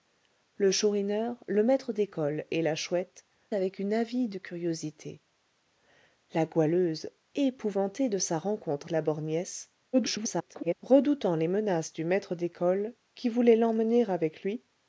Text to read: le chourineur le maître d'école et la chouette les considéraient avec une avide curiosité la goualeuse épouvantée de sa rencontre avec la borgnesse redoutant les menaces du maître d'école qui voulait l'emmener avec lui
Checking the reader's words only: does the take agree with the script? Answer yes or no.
no